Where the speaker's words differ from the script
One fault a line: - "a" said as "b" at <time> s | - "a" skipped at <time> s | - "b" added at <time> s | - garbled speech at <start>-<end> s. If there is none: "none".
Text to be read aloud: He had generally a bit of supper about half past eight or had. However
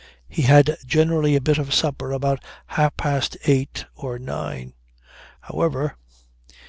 - "had" said as "nine" at 4.2 s